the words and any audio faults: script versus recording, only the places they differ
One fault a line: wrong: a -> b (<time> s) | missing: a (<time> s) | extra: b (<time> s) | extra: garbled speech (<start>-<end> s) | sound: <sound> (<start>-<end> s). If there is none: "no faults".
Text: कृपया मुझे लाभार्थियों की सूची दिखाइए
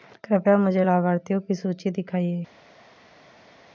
no faults